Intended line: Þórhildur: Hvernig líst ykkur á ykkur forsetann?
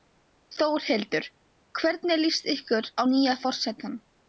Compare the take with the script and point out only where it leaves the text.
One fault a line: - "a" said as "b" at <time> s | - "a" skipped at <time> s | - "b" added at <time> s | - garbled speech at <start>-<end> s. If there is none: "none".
- "ykkur" said as "nýja" at 3.1 s